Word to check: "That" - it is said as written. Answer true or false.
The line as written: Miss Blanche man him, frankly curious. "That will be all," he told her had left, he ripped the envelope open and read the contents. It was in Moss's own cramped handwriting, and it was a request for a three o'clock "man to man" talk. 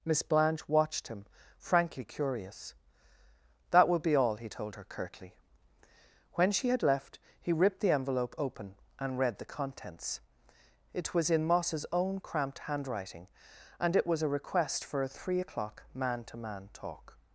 true